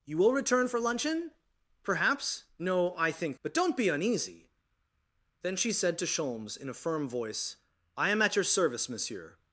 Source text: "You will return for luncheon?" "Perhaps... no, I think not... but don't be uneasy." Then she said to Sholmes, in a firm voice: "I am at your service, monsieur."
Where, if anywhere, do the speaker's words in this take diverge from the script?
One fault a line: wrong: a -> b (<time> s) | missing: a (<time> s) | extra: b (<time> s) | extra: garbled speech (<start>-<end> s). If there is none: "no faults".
missing: not (3.4 s)